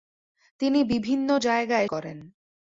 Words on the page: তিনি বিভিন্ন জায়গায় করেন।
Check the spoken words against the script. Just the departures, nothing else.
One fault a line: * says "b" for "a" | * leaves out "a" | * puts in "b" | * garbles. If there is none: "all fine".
all fine